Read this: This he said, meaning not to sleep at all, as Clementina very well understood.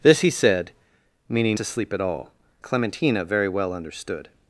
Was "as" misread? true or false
true